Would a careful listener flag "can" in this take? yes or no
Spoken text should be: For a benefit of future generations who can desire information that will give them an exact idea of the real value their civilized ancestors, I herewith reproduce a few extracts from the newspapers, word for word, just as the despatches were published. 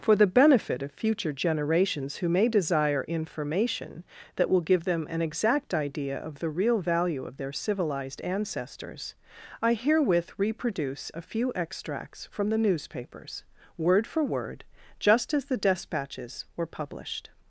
yes